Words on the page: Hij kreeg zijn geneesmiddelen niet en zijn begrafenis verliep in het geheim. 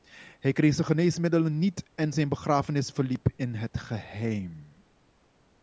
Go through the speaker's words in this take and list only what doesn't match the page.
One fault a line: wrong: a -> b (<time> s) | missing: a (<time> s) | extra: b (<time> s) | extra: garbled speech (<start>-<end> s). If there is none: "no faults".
no faults